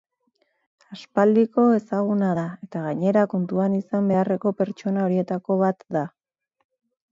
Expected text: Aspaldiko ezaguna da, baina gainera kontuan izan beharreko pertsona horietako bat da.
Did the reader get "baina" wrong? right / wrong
wrong